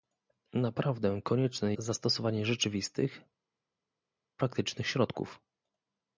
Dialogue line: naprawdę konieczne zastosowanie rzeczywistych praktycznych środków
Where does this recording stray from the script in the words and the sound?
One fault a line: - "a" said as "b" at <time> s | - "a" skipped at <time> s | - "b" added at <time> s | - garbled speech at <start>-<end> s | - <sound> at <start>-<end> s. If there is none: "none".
none